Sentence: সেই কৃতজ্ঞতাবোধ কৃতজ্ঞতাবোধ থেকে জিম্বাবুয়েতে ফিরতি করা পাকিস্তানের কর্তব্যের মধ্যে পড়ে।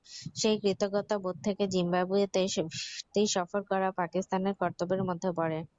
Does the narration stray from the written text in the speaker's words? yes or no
yes